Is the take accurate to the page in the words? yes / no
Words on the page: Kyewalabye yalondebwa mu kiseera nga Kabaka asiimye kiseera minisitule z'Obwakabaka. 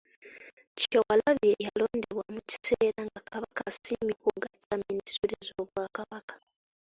no